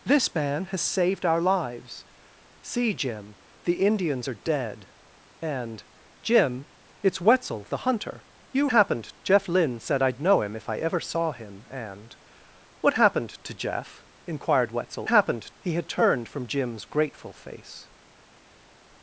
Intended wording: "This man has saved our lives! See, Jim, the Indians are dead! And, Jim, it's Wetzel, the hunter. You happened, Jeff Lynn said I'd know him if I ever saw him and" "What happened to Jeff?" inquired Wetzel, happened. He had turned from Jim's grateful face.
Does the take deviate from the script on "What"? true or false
false